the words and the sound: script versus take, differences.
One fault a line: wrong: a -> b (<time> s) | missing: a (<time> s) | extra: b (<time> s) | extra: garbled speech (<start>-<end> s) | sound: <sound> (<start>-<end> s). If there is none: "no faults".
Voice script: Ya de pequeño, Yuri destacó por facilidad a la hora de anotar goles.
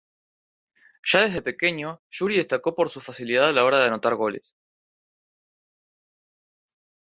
wrong: de -> desde (1.2 s)
extra: su (2.9 s)